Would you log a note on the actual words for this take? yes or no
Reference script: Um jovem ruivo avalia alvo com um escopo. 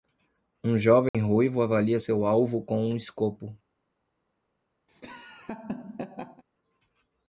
yes